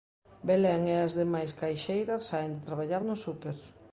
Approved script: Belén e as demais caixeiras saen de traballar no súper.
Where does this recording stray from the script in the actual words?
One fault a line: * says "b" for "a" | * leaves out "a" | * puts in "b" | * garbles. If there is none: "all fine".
all fine